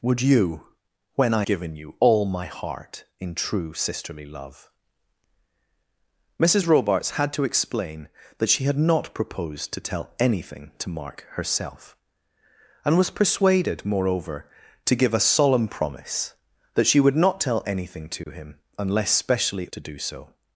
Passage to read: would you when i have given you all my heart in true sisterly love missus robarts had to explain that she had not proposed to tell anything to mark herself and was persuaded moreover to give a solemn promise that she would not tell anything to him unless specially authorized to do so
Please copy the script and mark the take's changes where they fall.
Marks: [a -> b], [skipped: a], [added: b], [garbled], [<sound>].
would you when i [skipped: have] given you all my heart in true sisterly love missus robarts had to explain that she had not proposed to tell anything to mark herself and was persuaded moreover to give a solemn promise that she would not tell anything to [dropout] him unless specially [skipped: authorized] to do so